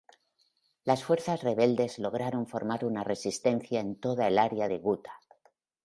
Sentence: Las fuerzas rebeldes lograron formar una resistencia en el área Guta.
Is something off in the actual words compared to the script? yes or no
yes